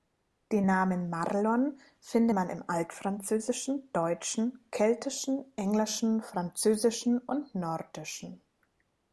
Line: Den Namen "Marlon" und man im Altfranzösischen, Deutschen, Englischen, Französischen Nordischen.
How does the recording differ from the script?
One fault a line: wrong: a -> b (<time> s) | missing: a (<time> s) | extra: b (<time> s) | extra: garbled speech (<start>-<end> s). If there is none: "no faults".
wrong: und -> finde (2.0 s)
extra: Keltischen (4.7 s)
extra: und (7.2 s)